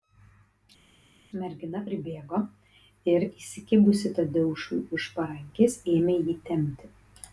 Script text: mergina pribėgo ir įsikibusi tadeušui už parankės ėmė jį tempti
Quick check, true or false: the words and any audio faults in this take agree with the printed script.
true